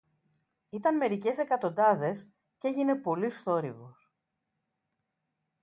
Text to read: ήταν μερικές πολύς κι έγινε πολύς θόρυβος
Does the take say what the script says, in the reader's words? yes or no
no